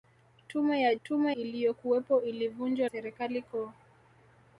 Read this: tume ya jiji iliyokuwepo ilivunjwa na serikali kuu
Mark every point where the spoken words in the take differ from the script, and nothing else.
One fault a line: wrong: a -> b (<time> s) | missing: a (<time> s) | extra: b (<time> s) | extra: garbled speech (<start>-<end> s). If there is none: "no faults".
wrong: jiji -> tume (1.0 s)
missing: na (2.9 s)